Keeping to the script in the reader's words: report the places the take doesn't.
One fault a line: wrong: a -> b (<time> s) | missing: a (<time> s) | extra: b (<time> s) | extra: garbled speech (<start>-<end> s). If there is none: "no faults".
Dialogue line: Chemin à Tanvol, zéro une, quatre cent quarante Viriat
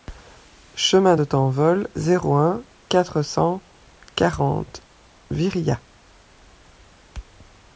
wrong: à -> de (1.1 s)
wrong: une -> un (2.4 s)